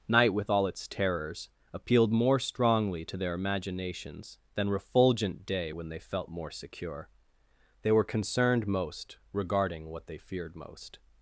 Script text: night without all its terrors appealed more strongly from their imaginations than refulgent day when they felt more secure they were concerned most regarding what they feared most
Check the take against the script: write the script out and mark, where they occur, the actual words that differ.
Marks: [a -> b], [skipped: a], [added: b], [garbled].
night [without -> with] all its terrors appealed more strongly [from -> to] their imaginations than refulgent day when they felt more secure they were concerned most regarding what they feared most